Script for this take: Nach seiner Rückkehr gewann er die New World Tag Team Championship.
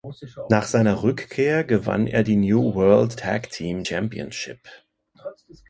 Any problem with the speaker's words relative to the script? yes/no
no